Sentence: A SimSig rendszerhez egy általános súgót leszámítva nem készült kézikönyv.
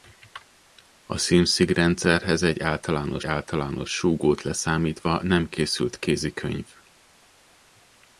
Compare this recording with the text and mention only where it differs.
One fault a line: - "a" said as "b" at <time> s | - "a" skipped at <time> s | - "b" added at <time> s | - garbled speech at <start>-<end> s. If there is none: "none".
- "általános" added at 3.2 s